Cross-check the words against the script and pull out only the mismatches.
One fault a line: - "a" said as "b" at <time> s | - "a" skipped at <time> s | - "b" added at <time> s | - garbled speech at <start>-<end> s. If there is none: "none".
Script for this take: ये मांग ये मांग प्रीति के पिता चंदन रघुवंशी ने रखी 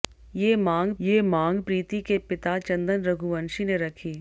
none